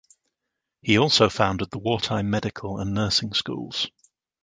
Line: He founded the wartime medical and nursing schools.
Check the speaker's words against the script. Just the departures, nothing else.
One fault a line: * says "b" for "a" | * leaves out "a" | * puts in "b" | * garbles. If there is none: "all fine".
* puts in "also"